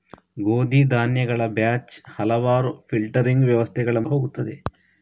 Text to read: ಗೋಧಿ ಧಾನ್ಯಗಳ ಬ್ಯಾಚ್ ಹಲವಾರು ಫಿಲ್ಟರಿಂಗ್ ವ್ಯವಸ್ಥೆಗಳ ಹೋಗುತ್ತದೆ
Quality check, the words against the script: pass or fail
pass